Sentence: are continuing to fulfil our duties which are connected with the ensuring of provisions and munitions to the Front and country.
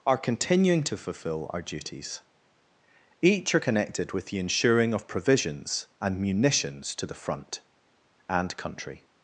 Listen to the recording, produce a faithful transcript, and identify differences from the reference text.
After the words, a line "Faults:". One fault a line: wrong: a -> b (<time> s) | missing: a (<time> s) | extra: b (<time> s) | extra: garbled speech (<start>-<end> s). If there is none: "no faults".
are continuing to fulfil our duties each are connected with the ensuring of provisions and munitions to the Front and country.
Faults:
wrong: which -> each (3.2 s)